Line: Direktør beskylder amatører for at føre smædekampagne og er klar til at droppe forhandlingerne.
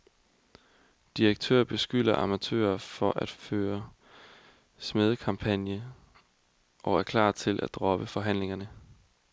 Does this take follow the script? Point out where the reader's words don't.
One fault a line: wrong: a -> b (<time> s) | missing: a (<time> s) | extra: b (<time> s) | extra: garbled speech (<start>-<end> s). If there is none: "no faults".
no faults